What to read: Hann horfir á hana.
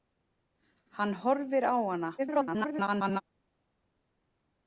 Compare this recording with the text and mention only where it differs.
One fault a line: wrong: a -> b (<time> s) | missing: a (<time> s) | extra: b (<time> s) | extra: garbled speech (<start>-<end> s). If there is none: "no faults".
extra: garbled speech (2.2-3.2 s)